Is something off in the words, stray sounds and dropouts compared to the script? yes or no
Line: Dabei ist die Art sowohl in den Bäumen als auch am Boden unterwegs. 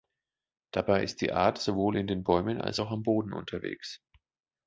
no